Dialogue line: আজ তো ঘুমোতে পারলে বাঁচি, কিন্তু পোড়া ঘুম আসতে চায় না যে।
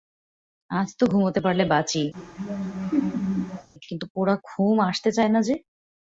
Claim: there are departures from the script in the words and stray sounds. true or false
true